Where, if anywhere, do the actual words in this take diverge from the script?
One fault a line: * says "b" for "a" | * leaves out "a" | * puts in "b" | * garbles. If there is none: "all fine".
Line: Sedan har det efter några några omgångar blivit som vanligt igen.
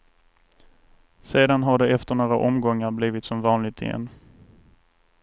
* leaves out "några"